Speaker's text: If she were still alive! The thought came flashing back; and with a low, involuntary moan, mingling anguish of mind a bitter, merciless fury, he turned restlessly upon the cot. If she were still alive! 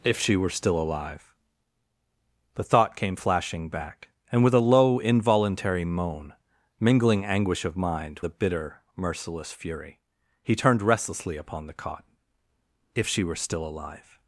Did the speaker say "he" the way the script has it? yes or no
yes